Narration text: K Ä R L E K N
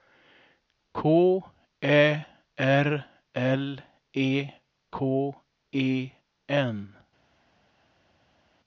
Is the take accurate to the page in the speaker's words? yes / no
no